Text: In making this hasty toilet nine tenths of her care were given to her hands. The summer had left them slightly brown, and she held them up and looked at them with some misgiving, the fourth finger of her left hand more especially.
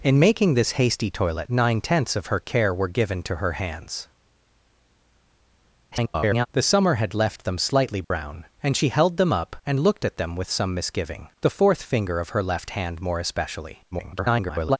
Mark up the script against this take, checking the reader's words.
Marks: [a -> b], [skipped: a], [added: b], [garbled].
In making this hasty toilet nine tenths of her care were given to her hands. [garbled] The summer had left them slightly brown, and she held them up and looked at them with some misgiving, the fourth finger of her left hand more especially. [garbled]